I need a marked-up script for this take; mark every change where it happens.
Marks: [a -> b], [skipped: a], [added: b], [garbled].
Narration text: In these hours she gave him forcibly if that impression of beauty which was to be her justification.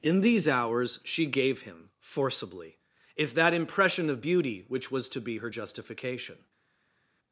In these hours she gave him forcibly if that impression of beauty which was to be her justification.